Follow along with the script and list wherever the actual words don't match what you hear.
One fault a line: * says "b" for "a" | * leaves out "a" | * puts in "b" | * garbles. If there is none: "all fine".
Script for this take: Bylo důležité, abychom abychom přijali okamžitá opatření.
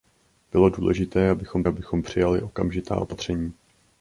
all fine